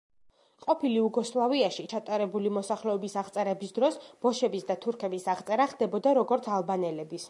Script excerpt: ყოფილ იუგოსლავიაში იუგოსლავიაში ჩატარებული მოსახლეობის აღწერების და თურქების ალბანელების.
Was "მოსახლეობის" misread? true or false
false